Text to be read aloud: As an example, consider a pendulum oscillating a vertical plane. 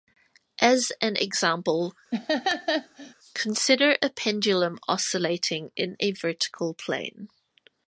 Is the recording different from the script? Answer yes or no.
yes